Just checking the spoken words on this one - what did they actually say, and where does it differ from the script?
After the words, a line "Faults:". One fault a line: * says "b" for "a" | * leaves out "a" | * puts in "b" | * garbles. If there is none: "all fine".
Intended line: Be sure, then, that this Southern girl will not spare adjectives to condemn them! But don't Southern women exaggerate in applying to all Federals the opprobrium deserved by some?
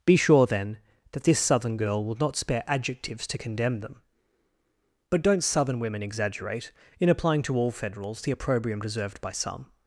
Be sure, then, that this Southern girl will not spare adjectives to condemn them! But don't Southern women exaggerate in applying to all Federals the opprobrium deserved by some?
Faults:
all fine